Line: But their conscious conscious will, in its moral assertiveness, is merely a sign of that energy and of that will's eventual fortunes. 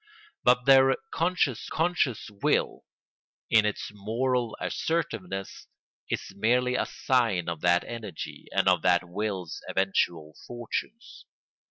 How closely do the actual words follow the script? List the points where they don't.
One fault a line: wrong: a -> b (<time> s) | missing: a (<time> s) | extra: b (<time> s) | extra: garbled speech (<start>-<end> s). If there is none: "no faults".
no faults